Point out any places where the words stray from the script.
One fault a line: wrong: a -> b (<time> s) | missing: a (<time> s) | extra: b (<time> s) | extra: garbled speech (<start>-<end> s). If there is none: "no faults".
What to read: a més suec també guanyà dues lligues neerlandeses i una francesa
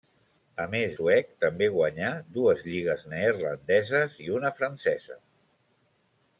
no faults